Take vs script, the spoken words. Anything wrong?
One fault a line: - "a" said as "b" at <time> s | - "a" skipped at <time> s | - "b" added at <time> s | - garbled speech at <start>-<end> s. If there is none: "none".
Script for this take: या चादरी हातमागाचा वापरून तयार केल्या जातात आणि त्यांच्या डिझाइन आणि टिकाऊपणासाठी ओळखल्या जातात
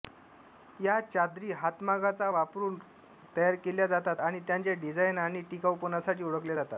none